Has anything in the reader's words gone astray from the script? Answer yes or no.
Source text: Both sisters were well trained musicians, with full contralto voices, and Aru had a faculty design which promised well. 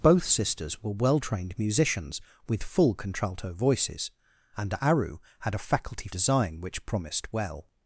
no